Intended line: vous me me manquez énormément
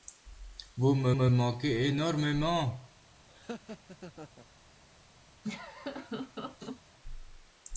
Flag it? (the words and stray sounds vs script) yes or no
yes